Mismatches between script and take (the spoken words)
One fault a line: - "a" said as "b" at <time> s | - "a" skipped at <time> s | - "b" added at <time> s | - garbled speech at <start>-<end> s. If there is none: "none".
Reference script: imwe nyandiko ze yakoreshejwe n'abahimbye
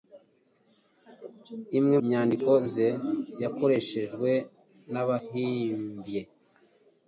none